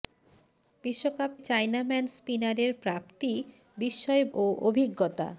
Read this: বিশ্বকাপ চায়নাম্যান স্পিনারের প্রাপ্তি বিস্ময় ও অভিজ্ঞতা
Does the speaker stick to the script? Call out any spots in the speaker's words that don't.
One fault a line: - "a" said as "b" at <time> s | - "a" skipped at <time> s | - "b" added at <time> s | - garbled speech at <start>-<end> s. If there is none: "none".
none